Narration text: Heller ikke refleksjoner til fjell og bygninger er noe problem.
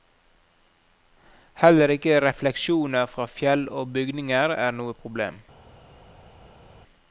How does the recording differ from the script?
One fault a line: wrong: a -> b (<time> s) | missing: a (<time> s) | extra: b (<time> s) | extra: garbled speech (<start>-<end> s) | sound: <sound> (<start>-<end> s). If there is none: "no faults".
wrong: til -> fra (3.0 s)